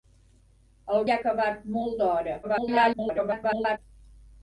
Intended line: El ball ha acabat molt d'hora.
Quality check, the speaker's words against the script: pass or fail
fail